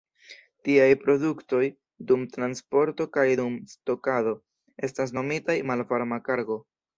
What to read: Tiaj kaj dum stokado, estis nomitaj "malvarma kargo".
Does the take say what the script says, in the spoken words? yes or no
no